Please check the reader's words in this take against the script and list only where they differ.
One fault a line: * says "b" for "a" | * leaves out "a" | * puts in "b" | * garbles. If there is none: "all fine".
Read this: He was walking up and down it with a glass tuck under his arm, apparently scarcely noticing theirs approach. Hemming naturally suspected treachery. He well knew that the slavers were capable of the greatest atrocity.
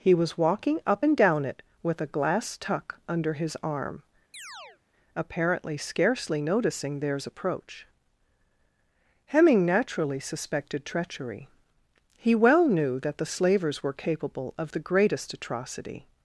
all fine